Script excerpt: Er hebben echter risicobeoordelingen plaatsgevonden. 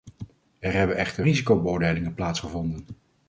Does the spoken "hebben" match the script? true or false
true